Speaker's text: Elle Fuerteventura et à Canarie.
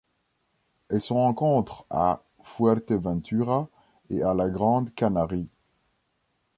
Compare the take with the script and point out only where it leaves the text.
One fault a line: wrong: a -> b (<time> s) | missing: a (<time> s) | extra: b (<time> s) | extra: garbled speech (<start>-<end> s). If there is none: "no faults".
extra: se rencontre à (1.0 s)
extra: la Grande (4.3 s)